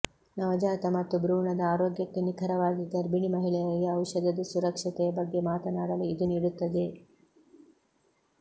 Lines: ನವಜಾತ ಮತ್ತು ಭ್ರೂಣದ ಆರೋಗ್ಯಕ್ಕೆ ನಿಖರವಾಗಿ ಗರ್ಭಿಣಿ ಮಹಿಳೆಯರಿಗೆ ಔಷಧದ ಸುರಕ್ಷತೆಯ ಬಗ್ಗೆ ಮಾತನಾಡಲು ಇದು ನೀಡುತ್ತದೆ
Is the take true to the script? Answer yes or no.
yes